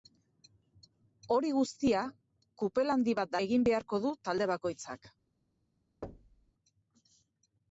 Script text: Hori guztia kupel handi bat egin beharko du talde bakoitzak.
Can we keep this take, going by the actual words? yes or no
yes